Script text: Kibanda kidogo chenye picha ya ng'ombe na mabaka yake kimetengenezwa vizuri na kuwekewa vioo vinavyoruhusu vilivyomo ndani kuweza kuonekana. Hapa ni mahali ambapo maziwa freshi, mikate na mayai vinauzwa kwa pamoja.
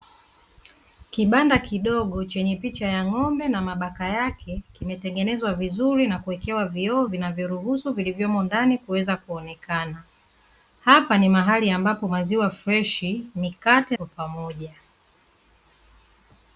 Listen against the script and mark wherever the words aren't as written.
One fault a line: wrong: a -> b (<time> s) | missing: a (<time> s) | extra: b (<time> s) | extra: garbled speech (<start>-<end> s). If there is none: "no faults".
missing: na mayai vinauzwa (14.0 s)